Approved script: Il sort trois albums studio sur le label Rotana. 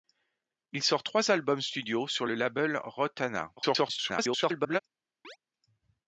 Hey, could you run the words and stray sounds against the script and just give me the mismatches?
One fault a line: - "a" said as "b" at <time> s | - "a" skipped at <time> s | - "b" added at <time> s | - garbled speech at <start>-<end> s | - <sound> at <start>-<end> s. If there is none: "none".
- garbled speech at 3.6-4.8 s
- chirp at 5.2-5.4 s